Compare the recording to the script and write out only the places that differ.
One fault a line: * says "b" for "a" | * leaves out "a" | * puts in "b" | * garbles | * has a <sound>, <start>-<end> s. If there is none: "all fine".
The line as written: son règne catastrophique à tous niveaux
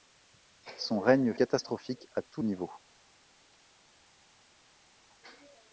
all fine